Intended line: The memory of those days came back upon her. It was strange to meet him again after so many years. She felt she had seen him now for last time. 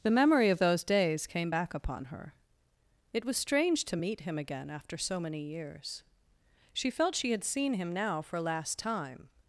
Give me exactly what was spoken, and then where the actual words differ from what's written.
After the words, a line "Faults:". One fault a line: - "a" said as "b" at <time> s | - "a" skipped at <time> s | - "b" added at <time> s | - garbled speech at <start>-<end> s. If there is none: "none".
The memory of those days came back upon her. It was strange to meet him again after so many years. She felt she had seen him now for last time.
Faults:
none